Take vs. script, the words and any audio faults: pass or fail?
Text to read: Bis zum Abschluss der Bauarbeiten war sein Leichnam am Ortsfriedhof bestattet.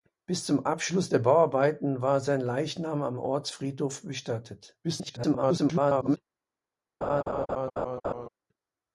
fail